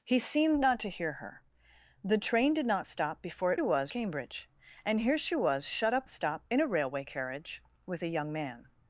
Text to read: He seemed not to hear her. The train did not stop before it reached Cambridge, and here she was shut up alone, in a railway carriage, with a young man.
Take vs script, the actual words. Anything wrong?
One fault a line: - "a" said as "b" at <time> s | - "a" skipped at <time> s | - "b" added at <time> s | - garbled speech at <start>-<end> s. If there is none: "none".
- "reached" said as "was" at 3.6 s
- "alone" said as "stop" at 6.1 s